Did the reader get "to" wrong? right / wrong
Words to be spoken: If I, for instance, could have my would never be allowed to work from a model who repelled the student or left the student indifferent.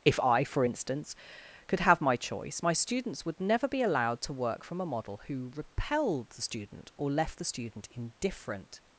right